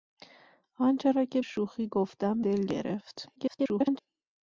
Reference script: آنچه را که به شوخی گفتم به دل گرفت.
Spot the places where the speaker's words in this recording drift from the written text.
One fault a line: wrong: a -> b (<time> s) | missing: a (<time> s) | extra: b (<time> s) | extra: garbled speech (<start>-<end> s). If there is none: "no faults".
missing: به (1.4 s)
missing: به (2.4 s)
extra: garbled speech (3.4-4.0 s)